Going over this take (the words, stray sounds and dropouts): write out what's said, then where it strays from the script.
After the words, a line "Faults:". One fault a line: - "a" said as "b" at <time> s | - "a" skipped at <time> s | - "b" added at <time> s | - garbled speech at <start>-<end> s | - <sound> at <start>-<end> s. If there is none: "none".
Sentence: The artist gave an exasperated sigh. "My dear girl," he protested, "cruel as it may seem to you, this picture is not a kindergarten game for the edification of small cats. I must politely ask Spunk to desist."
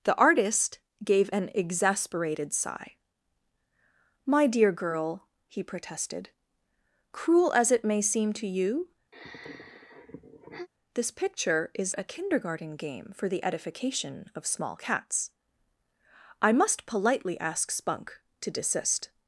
The artist gave an exasperated sigh. "My dear girl," he protested, "cruel as it may seem to you, this picture is a kindergarten game for the edification of small cats. I must politely ask Spunk to desist."
Faults:
- sigh at 9.1-10.7 s
- "not" skipped at 11.9 s